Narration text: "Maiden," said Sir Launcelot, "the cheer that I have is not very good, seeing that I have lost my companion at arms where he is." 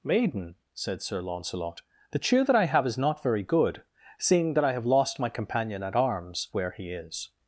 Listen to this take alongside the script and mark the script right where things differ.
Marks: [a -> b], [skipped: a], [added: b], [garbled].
"Maiden," said Sir Launcelot, "the cheer that I have is not very good, seeing that I have lost my companion at arms where he is."